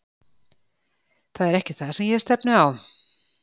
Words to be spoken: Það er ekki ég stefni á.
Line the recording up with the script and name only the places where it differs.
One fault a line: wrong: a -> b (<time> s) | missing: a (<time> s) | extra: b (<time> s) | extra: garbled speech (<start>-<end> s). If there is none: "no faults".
extra: það sem (1.8 s)